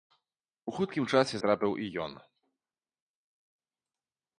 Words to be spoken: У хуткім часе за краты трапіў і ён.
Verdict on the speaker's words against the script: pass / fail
fail